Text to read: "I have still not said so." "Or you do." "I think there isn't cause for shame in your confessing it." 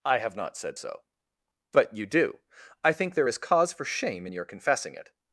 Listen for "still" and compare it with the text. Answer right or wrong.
wrong